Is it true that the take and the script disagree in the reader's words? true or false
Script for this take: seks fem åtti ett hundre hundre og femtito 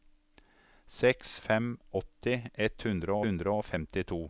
false